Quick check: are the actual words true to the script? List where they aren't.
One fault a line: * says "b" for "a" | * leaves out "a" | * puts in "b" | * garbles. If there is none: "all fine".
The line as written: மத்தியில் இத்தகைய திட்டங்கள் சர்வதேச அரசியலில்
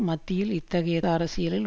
* leaves out "திட்டங்கள் சர்வதேச"